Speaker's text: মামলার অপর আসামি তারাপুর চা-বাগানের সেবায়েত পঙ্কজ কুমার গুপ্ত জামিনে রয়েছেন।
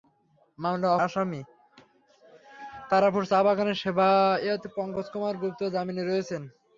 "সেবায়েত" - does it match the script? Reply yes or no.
yes